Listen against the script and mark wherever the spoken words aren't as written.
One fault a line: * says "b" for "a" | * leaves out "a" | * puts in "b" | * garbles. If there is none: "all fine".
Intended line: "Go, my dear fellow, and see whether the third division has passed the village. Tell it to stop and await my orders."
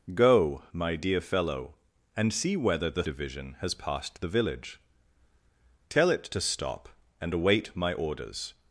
* leaves out "third"